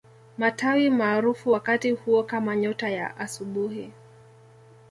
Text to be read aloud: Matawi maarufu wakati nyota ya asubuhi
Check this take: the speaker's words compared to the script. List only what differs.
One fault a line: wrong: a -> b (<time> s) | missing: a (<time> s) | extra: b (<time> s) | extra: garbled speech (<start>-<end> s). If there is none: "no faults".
extra: huo kama (1.9 s)